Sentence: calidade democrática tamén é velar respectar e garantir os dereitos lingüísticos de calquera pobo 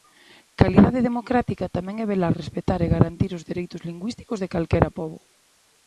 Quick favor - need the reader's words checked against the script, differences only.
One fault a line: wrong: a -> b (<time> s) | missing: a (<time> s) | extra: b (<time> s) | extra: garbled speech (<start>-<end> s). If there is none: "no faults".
no faults